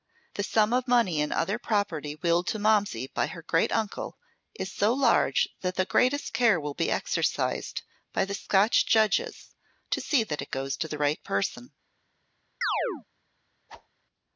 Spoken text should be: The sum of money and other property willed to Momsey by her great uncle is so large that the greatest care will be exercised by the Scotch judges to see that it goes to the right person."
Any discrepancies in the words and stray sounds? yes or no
yes